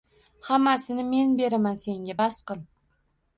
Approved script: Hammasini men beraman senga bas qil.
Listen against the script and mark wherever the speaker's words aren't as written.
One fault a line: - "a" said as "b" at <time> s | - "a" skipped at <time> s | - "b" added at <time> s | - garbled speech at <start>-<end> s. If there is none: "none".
none